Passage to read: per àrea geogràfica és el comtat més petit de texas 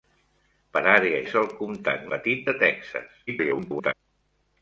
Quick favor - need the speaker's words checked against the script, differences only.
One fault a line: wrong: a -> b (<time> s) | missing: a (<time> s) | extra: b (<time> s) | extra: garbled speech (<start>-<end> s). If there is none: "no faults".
missing: geogràfica (1.2 s)
missing: més (2.1 s)
extra: garbled speech (3.3-3.9 s)